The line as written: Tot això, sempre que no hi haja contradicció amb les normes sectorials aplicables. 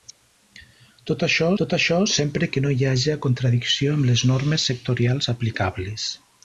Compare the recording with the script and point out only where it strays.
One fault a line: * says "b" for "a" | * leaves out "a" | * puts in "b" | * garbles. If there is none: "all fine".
* puts in "tot això"